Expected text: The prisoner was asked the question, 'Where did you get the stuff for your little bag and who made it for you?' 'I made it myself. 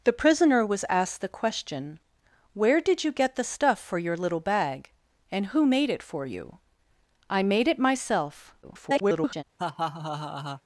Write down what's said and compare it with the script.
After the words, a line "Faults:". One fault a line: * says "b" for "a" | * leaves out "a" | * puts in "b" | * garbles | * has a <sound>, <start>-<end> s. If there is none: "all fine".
The prisoner was asked the question, 'Where did you get the stuff for your little bag and who made it for you?' 'I made it myself. [garbled]
Faults:
* garbles
* has a laugh, 9.6-10.6 s